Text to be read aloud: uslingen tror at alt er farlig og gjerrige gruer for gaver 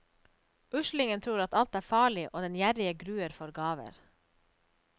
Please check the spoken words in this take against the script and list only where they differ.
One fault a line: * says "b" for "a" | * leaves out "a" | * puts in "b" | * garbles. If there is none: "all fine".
* puts in "den"